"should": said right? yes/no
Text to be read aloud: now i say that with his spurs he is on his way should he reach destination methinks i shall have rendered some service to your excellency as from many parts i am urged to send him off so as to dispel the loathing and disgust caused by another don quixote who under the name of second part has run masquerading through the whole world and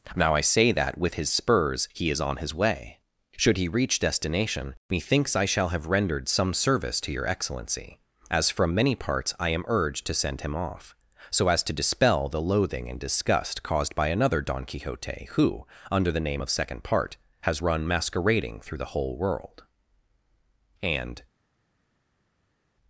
yes